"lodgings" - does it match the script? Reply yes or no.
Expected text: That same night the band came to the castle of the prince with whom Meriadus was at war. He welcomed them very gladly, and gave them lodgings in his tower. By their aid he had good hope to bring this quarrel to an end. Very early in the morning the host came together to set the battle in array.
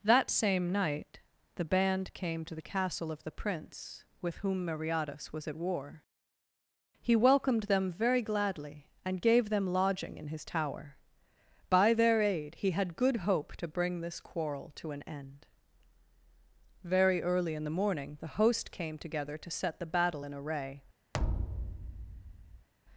no